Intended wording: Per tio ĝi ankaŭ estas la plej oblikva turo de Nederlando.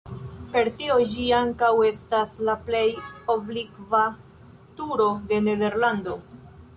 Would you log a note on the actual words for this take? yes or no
no